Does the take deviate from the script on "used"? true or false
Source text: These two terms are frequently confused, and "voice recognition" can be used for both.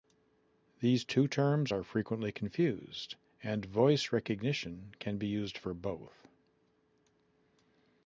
false